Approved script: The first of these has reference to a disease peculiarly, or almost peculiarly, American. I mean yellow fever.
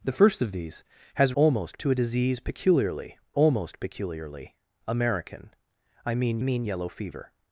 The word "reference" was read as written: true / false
false